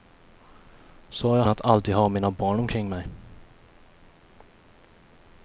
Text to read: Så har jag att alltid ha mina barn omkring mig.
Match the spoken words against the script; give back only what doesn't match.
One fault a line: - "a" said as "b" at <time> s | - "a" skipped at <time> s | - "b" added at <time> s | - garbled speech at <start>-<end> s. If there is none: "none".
none